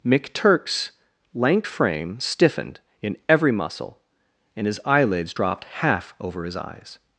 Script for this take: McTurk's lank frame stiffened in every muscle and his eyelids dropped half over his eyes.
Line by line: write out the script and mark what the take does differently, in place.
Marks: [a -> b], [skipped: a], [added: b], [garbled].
McTurk's lank frame stiffened in every muscle and his eyelids dropped half over his eyes.